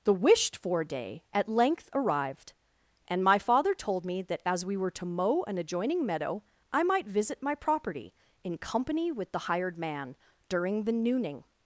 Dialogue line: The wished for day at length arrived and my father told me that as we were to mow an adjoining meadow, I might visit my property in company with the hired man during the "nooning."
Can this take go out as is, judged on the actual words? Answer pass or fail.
pass